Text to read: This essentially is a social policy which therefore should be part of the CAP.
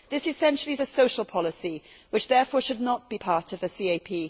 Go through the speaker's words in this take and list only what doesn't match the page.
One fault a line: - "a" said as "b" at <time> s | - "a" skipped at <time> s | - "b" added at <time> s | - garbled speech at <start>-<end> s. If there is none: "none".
- "not" added at 2.8 s